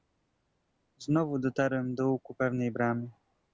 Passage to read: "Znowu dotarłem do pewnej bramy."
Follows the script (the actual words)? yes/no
no